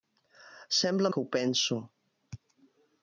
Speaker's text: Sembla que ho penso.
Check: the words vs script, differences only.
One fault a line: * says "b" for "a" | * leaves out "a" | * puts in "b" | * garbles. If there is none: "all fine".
all fine